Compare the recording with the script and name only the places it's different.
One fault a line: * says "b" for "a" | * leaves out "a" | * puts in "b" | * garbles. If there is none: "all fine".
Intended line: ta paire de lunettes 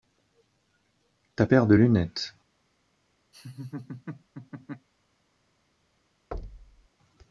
all fine